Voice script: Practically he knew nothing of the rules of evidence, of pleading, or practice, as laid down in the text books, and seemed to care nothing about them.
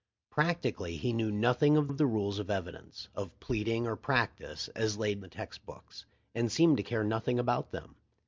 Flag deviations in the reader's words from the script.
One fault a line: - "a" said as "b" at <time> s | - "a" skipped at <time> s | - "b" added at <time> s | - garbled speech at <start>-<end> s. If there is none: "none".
- "of" added at 1.9 s
- "down in" skipped at 5.2 s